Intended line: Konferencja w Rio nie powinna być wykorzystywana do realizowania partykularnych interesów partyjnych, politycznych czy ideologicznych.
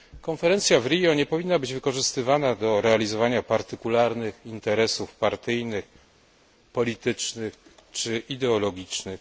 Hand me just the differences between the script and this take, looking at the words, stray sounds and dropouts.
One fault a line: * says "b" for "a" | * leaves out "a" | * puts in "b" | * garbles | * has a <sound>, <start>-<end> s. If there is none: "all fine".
all fine